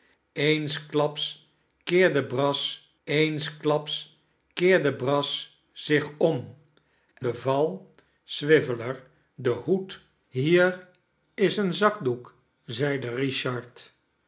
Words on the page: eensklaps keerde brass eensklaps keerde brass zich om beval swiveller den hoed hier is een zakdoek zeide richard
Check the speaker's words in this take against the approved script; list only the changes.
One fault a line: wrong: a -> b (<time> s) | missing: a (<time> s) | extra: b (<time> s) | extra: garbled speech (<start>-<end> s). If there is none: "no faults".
no faults